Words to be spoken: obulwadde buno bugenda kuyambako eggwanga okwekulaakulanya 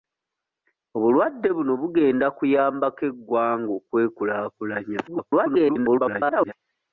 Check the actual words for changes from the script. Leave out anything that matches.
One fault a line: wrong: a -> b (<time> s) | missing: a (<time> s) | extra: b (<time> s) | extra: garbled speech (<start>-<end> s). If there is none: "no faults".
extra: garbled speech (5.1-6.5 s)